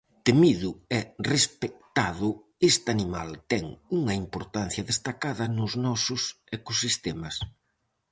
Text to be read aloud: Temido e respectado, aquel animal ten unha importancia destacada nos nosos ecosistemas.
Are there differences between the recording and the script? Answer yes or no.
yes